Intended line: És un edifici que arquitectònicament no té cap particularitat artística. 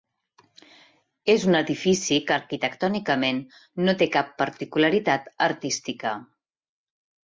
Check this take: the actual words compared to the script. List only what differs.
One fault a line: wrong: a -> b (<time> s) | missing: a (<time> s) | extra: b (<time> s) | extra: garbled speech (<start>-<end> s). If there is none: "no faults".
no faults